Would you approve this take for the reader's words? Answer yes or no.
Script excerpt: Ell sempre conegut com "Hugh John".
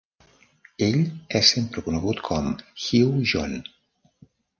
no